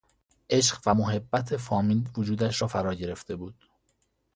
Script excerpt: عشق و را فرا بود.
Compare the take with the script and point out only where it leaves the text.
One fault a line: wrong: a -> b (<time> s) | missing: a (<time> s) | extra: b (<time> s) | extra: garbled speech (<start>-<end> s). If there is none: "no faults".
extra: محبت فامیل وجودش (0.9 s)
extra: گرفته (2.9 s)